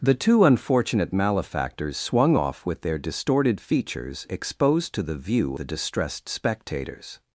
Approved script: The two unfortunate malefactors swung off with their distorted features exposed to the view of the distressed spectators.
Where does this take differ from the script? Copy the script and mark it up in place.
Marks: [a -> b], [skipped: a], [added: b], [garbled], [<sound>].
The two unfortunate malefactors swung off with their distorted features exposed to the view [skipped: of] the distressed spectators.